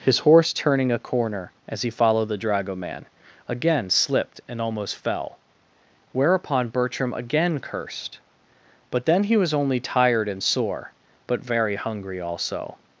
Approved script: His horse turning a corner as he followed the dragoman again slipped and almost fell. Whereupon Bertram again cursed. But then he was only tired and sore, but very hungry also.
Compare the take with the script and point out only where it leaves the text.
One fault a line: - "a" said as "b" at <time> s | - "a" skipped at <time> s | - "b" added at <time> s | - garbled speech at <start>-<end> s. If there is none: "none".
none